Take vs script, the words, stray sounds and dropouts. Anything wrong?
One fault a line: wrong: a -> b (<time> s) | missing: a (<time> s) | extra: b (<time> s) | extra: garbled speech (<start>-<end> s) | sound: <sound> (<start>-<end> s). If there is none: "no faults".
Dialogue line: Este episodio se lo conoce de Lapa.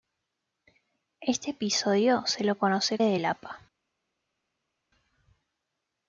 no faults